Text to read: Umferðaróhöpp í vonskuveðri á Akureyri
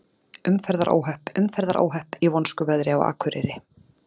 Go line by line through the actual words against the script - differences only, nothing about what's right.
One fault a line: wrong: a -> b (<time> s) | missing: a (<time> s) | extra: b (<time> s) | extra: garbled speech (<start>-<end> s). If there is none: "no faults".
extra: umferðaróhöpp (1.4 s)